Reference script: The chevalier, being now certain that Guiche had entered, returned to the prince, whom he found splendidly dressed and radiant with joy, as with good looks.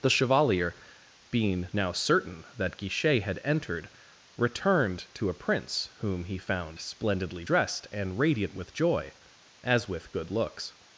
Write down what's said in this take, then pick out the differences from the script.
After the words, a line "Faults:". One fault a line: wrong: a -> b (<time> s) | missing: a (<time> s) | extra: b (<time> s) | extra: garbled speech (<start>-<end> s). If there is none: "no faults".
The chevalier, being now certain that Guiche had entered, returned to a prince, whom he found splendidly dressed and radiant with joy, as with good looks.
Faults:
wrong: the -> a (5.3 s)